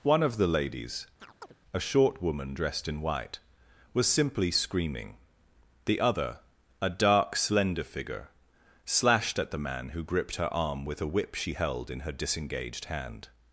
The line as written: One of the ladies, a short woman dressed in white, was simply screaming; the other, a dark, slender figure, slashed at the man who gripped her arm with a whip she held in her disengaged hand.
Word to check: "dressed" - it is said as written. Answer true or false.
true